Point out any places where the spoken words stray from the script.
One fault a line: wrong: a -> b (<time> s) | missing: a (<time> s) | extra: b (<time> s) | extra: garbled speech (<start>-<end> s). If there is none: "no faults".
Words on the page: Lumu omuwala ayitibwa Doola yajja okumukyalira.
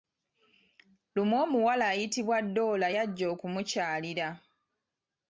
no faults